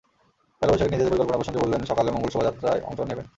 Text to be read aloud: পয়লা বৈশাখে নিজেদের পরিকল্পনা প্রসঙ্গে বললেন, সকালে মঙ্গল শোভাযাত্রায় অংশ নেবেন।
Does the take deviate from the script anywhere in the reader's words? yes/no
no